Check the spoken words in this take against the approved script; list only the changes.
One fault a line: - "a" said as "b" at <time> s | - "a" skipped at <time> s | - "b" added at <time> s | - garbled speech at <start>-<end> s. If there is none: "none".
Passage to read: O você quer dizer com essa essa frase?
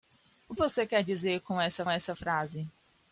none